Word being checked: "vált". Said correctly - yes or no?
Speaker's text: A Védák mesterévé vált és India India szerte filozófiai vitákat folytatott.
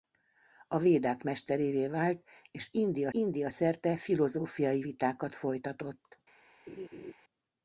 yes